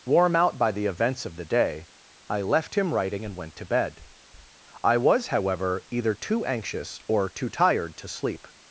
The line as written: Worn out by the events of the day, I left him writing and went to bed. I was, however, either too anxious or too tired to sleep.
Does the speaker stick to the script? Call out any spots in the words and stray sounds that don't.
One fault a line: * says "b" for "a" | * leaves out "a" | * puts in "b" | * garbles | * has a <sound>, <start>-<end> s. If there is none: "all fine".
* says "Warm" for "Worn"